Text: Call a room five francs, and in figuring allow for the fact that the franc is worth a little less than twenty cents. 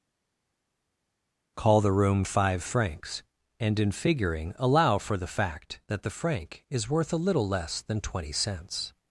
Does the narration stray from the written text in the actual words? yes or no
yes